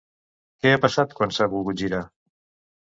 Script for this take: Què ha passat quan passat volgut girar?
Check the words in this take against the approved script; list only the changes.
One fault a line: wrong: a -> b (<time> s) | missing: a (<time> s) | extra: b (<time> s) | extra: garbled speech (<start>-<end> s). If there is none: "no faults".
wrong: passat -> s'ha (1.4 s)